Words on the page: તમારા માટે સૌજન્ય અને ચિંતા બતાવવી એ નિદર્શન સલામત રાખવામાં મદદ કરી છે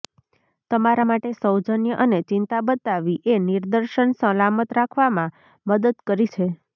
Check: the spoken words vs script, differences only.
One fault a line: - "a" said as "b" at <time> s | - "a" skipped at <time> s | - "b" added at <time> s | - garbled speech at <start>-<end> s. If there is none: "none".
none